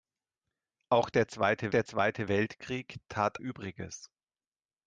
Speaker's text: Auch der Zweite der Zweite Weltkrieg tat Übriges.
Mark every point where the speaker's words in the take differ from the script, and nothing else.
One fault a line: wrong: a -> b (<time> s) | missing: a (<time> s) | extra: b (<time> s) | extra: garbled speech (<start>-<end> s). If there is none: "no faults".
no faults